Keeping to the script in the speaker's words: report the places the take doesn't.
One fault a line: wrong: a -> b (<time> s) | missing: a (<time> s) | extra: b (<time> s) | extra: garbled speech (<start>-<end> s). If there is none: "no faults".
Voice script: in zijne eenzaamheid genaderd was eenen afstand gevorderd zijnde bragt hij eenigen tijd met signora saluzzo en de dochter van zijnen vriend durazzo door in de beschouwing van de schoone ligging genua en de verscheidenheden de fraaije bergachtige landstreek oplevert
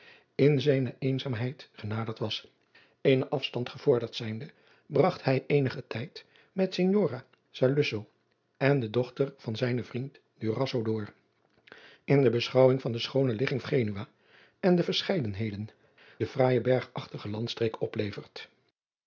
no faults